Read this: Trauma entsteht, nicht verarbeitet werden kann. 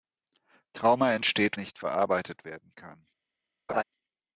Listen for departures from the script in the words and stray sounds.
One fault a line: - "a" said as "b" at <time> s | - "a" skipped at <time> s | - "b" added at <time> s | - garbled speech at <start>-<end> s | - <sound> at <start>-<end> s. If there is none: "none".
- laugh at 3.7-3.8 s